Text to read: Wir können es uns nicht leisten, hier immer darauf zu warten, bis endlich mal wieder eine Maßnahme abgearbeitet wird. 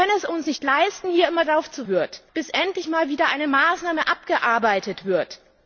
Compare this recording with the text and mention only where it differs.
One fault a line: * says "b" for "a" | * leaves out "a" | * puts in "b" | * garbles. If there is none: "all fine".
* says "wird" for "warten"